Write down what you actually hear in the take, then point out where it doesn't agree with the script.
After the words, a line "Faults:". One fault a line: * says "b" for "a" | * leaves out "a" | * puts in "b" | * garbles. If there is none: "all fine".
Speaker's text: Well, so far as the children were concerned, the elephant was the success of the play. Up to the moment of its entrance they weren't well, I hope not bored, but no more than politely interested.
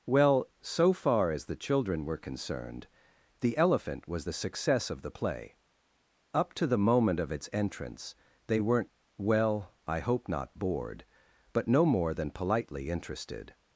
Well, so far as the children were concerned, the elephant was the success of the play. Up to the moment of its entrance they weren't well, I hope not bored, but no more than politely interested.
Faults:
all fine